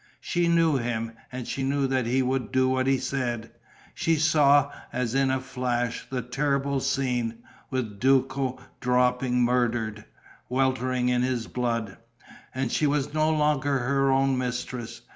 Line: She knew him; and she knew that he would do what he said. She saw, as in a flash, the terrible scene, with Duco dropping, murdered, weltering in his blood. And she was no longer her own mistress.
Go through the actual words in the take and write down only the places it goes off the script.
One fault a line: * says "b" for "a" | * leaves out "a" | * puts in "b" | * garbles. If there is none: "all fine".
all fine